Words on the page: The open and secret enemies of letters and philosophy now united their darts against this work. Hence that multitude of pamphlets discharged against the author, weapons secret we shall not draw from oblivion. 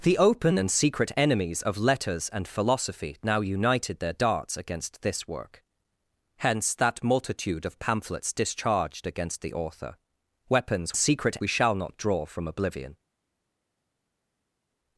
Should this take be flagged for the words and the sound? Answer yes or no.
no